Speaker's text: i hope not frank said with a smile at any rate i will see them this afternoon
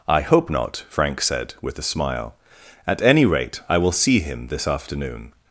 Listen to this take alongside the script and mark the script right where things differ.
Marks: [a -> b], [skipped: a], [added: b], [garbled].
i hope not frank said with a smile at any rate i will see [them -> him] this afternoon